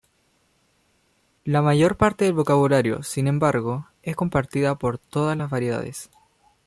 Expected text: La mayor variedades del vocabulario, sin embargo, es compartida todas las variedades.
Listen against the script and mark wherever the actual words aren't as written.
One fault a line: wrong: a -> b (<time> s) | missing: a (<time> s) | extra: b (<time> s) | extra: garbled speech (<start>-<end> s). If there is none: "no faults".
wrong: variedades -> parte (1.9 s)
extra: por (4.7 s)